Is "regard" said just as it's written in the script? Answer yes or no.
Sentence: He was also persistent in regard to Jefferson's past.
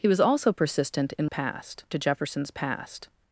no